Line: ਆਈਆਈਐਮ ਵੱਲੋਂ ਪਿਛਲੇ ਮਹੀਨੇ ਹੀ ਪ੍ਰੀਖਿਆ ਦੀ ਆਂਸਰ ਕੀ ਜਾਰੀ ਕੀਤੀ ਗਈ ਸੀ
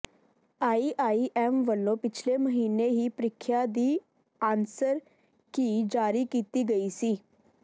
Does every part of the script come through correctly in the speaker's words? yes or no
yes